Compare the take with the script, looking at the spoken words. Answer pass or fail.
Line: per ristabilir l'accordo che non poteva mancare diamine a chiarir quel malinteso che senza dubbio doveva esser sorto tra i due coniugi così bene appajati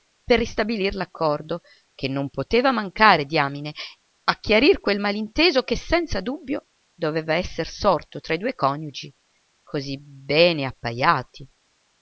pass